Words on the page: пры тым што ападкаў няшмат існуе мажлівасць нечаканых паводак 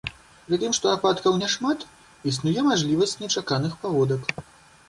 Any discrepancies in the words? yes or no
no